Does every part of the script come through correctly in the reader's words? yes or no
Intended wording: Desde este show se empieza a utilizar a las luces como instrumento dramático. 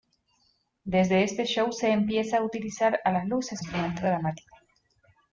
no